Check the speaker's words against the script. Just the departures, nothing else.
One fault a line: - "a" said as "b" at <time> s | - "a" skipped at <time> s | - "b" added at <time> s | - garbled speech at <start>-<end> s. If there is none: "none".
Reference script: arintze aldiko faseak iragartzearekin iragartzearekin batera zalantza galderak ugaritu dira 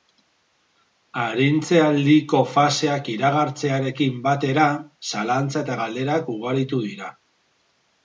- "iragartzearekin" skipped at 4.2 s
- "eta" added at 5.7 s